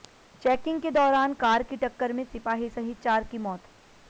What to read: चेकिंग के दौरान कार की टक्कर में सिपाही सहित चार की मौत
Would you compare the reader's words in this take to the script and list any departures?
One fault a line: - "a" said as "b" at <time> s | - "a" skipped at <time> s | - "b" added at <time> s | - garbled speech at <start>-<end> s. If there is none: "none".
none